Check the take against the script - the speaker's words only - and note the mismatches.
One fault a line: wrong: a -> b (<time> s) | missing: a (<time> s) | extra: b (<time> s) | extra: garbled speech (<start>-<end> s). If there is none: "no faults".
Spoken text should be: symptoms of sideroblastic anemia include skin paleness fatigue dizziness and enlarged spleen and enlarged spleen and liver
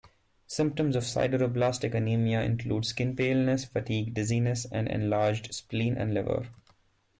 missing: enlarged spleen and (6.1 s)